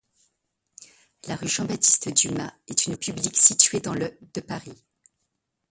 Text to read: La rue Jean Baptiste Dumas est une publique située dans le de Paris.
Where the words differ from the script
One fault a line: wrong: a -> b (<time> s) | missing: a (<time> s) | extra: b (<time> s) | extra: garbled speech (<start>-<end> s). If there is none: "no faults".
no faults